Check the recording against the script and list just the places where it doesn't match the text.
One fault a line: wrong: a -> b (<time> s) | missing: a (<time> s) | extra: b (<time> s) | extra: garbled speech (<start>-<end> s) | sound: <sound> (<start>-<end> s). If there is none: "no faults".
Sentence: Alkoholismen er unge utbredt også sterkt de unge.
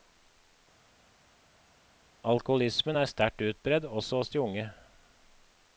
wrong: unge -> sterkt (3.0 s)
wrong: sterkt -> hos (4.2 s)